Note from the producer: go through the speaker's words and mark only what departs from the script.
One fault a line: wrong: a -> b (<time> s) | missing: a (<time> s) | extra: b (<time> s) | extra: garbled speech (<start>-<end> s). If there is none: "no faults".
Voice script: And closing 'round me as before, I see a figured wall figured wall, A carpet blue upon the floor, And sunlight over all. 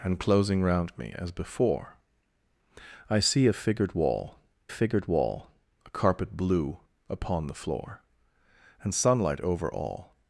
no faults